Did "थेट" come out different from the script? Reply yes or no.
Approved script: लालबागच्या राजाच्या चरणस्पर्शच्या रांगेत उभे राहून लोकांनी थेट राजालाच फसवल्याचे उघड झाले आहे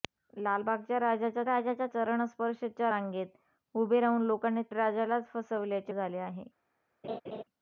yes